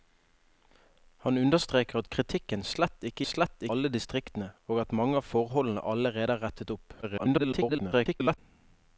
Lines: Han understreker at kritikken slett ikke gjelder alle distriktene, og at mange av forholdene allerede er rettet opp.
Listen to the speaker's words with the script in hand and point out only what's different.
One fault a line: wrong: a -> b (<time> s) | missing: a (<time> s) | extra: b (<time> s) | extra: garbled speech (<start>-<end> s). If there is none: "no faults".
wrong: gjelder -> slett (3.3 s)
extra: garbled speech (7.0-8.4 s)